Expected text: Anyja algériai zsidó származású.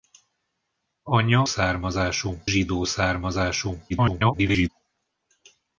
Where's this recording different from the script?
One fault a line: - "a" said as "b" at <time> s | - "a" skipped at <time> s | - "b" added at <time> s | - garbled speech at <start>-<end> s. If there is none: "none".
- "algériai" said as "származású" at 1.4 s
- garbled speech at 3.9-4.7 s